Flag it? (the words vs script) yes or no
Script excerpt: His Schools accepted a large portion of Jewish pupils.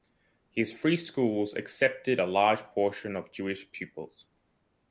yes